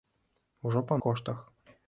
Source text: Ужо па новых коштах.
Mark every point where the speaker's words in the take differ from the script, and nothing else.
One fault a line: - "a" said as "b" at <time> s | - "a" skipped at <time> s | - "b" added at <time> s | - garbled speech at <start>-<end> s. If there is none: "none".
- "новых" skipped at 1.0 s